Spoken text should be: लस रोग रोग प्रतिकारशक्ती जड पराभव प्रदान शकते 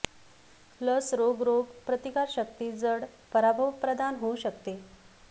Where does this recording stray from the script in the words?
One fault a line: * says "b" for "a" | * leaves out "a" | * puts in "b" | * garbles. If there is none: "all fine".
* puts in "होऊ"